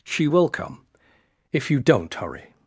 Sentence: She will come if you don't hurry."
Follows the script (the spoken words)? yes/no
yes